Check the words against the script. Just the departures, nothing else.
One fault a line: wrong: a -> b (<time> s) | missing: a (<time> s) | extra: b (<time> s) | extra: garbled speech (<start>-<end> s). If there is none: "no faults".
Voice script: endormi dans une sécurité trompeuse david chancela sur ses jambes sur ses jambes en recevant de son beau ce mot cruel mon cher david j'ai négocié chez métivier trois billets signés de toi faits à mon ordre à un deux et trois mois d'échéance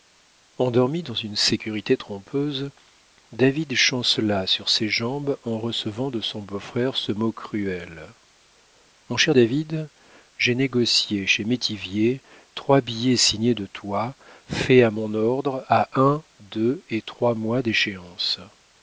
missing: sur ses jambes (5.4 s)
extra: frère (6.6 s)